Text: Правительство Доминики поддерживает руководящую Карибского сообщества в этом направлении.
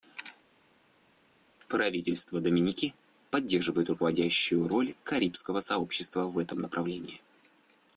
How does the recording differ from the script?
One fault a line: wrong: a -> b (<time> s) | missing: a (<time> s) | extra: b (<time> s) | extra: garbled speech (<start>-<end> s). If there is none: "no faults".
extra: роль (4.7 s)